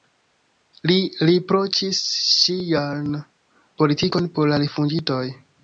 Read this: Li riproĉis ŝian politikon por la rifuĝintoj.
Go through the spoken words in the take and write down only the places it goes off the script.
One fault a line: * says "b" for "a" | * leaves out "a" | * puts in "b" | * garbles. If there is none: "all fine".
all fine